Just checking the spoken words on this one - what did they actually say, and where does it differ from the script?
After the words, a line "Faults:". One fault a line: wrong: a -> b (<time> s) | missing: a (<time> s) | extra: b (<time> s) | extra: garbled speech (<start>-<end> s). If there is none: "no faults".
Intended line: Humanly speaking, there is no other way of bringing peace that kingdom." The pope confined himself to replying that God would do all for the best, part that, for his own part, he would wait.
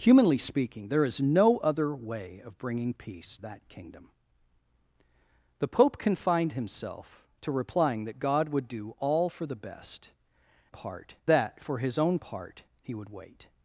Humanly speaking, there is no other way of bringing peace that kingdom." The pope confined himself to replying that God would do all for the best, part that, for his own part, he would wait.
Faults:
no faults